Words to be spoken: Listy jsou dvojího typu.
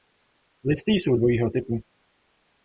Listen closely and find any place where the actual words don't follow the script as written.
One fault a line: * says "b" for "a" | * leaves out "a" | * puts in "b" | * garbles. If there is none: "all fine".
all fine